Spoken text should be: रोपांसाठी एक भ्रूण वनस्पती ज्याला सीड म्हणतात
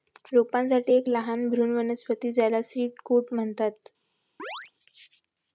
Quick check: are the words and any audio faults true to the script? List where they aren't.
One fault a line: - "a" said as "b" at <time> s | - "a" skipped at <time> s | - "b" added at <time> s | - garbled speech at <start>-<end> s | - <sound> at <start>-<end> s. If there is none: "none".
- "लहान" added at 1.1 s
- "कोट" added at 3.0 s
- chirp at 4.4-4.7 s